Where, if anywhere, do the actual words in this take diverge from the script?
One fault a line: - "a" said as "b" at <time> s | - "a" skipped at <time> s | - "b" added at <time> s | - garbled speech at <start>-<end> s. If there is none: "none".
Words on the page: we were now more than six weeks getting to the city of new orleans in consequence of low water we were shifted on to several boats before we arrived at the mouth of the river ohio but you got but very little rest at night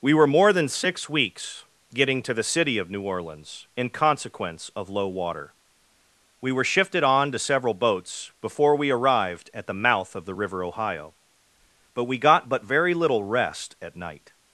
- "now" skipped at 0.3 s
- "you" said as "we" at 12.1 s